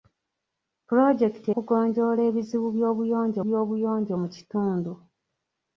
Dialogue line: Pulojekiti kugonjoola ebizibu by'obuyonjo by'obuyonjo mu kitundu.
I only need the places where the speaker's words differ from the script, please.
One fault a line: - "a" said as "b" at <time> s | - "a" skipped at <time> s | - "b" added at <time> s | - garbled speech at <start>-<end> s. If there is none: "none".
none